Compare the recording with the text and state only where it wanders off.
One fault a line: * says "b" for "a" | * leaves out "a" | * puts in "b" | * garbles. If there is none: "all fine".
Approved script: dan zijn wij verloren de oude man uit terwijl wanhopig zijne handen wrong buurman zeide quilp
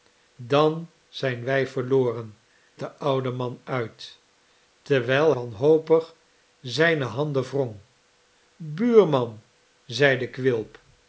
all fine